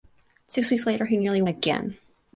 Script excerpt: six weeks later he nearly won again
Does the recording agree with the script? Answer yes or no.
no